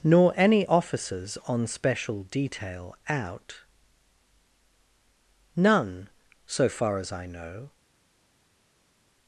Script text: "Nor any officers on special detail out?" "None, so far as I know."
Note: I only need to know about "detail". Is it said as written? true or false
true